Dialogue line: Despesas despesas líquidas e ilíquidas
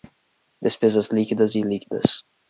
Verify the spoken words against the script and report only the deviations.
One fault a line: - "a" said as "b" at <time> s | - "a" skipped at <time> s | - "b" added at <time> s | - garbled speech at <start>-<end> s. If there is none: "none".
- "despesas" skipped at 1.1 s